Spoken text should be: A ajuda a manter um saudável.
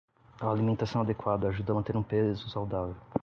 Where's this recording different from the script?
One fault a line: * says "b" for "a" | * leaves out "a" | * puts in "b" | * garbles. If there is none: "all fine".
* puts in "alimentação adequada"
* puts in "peso"